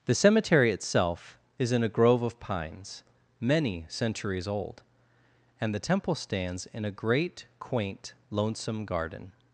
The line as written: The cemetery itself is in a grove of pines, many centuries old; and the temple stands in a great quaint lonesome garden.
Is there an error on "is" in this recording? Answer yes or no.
no